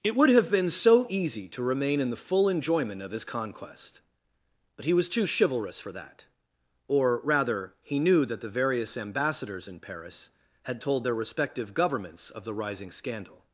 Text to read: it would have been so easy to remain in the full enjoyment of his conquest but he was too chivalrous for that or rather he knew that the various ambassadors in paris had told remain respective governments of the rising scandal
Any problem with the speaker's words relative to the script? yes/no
yes